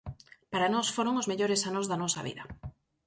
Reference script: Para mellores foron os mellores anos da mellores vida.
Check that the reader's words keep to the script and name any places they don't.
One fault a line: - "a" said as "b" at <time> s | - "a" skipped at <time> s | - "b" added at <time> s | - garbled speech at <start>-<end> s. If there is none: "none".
- "mellores" said as "nós" at 0.7 s
- "mellores" said as "nosa" at 2.0 s